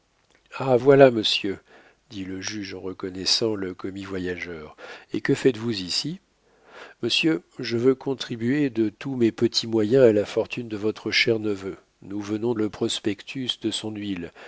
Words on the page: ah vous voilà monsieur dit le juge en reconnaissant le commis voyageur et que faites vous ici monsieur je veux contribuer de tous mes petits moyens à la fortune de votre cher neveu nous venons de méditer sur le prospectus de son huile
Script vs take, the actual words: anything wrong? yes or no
yes